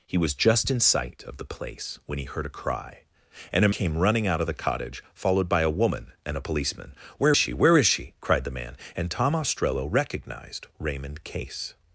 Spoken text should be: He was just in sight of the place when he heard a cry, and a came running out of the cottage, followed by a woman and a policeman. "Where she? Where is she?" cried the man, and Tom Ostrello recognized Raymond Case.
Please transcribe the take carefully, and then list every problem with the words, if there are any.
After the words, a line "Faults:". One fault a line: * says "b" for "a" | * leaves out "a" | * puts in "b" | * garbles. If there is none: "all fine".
He was just in sight of the place when he heard a cry, and a came running out of the cottage, followed by a woman and a policeman. "Where she? Where is she?" cried the man, and Tom Ostrello recognized Raymond Case.
Faults:
all fine